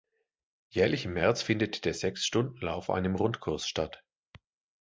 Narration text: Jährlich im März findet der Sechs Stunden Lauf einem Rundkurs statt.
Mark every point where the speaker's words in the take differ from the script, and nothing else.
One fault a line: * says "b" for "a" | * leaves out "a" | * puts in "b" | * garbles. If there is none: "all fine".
all fine